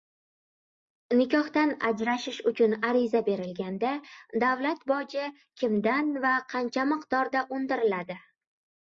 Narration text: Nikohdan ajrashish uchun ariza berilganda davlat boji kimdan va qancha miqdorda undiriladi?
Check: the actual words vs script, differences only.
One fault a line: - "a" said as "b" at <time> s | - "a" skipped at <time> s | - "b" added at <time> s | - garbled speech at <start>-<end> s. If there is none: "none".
none